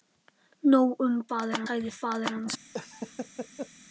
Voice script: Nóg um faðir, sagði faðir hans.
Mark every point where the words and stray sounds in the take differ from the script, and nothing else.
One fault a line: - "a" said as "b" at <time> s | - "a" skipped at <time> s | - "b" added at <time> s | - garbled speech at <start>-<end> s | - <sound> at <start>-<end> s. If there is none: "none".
- laugh at 2.7-3.7 s